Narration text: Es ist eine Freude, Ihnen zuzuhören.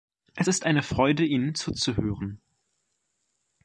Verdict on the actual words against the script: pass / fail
pass